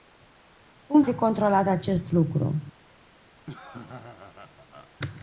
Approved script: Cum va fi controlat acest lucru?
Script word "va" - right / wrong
wrong